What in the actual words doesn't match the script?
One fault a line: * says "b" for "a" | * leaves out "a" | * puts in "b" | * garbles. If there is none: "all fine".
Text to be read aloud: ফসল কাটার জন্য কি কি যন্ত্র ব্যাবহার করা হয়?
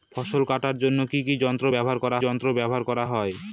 * puts in "যন্ত্র ব্যাবহার করা"